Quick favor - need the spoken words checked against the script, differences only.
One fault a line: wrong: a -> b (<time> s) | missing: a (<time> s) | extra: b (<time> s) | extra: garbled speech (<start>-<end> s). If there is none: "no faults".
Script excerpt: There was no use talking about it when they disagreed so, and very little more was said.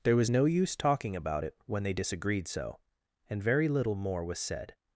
no faults